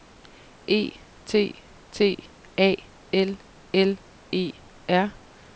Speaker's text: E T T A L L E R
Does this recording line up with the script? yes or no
yes